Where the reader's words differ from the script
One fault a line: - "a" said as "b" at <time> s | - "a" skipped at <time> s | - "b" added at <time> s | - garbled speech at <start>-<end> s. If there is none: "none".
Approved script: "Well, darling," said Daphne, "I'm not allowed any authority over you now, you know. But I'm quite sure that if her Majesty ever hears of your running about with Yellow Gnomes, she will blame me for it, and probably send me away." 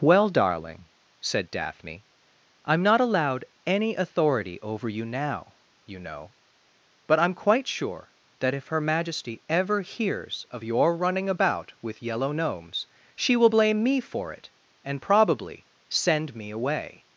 none